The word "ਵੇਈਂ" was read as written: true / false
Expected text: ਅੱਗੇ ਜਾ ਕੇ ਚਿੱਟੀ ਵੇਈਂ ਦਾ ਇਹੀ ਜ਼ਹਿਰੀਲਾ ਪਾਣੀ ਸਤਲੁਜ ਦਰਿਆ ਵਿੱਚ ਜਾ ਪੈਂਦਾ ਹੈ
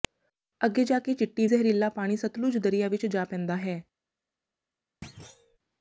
false